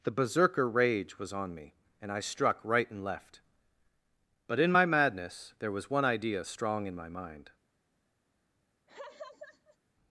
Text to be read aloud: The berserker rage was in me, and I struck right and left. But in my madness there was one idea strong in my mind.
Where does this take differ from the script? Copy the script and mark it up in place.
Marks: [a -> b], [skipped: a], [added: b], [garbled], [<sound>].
The berserker rage was [in -> on] me, and I struck right and left. But in my madness there was one idea strong in my mind. [laugh]